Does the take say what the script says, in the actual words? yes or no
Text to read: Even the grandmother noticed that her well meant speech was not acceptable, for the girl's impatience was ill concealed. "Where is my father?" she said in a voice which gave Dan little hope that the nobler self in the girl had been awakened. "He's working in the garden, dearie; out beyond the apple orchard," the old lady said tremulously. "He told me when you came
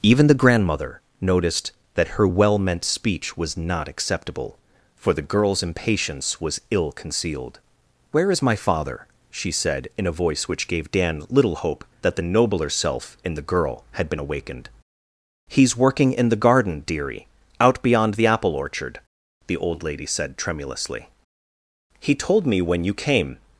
yes